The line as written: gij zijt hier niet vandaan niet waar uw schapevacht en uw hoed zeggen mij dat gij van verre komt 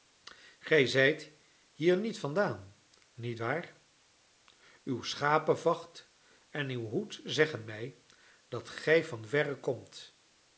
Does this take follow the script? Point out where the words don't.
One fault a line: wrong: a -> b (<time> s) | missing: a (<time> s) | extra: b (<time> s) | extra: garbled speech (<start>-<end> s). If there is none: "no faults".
no faults